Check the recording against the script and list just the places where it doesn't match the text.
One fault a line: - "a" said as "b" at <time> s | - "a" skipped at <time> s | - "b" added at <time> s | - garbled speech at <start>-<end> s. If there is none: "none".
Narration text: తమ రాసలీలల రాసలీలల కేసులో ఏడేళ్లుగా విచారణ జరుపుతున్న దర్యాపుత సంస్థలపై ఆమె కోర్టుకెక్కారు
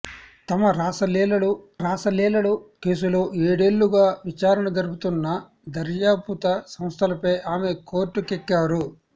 none